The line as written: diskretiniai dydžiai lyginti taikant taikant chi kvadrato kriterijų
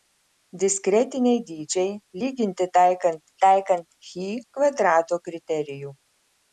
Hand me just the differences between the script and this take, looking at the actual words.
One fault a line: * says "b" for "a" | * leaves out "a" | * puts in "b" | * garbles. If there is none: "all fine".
all fine